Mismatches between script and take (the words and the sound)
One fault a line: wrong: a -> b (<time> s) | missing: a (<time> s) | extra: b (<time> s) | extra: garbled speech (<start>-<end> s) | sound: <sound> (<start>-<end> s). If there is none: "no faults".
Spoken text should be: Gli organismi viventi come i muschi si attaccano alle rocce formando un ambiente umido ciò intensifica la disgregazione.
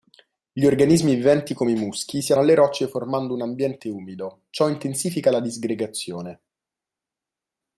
missing: attaccano (2.3 s)